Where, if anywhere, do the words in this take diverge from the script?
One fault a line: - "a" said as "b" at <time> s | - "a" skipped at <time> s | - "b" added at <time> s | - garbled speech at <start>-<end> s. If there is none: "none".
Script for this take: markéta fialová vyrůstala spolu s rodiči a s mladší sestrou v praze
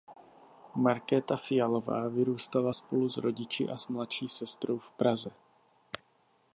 none